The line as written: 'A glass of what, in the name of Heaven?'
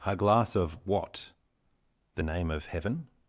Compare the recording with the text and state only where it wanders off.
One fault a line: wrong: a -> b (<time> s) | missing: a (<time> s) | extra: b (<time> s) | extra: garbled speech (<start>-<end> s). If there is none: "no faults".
missing: in (1.3 s)